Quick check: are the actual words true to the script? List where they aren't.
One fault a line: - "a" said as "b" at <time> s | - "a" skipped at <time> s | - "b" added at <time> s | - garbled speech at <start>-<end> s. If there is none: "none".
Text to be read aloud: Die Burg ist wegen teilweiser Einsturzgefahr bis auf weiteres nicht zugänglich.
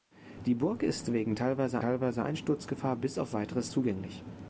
- "teilweiser" added at 1.8 s
- "nicht" skipped at 3.7 s